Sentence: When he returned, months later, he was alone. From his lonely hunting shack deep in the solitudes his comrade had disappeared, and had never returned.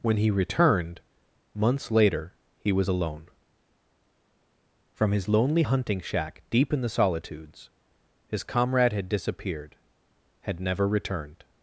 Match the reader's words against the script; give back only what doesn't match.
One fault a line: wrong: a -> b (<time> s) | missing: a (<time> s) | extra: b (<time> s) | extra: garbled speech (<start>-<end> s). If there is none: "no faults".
missing: and (9.8 s)